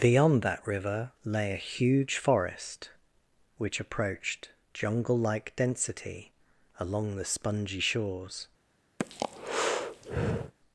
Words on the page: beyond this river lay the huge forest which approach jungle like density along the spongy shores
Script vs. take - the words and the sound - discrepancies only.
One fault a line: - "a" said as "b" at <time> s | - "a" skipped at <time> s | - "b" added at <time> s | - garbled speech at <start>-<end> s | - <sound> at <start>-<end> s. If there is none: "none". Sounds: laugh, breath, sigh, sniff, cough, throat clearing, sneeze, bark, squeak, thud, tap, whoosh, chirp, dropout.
- "this" said as "that" at 0.4 s
- "the" said as "a" at 1.5 s
- "approach" said as "approached" at 3.8 s
- breath at 9.0-10.5 s